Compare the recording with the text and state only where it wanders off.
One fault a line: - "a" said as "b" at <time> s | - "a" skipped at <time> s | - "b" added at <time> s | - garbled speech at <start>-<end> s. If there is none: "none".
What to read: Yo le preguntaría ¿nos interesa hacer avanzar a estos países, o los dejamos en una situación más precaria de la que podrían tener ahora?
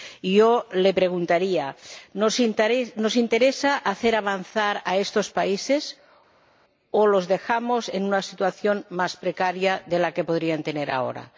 none